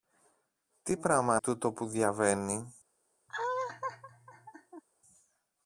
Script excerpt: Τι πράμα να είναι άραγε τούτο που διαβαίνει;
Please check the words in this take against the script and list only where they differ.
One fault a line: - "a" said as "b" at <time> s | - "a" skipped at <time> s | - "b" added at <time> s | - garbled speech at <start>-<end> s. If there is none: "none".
- "να είναι άραγε" skipped at 1.4 s